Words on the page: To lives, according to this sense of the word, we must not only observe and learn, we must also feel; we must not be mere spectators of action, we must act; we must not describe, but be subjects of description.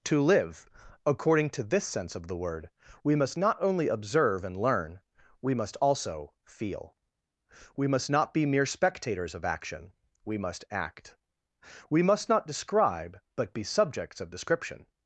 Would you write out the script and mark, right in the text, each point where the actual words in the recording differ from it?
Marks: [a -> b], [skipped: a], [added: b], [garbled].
To [lives, -> live] according to this sense of the word, we must not only observe and learn, we must also feel; we must not be mere spectators of action, we must act; we must not describe, but be subjects of description.